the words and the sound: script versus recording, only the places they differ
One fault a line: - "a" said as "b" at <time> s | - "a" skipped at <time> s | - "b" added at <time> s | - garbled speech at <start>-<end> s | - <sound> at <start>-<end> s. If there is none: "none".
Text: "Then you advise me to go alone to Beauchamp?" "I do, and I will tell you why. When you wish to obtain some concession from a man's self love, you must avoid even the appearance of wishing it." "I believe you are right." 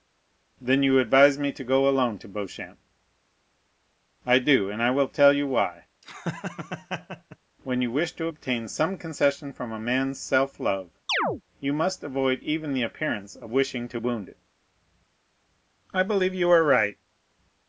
- laugh at 6.0-7.4 s
- chirp at 11.1-11.4 s
- "to wound" added at 13.9 s